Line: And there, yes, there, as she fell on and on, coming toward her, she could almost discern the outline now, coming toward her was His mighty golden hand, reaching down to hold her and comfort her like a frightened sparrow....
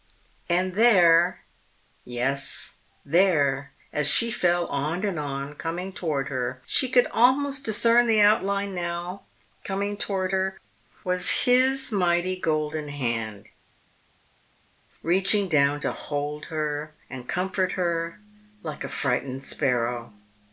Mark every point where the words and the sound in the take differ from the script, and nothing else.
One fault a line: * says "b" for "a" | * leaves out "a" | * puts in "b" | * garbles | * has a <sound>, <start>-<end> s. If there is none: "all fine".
all fine